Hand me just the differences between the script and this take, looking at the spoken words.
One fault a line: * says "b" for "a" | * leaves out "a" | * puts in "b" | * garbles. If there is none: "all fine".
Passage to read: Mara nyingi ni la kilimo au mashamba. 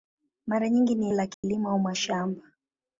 all fine